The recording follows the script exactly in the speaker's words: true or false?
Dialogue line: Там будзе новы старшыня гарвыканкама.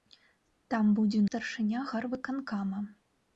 false